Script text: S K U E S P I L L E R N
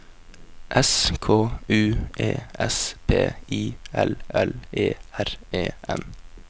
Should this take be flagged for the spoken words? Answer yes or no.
yes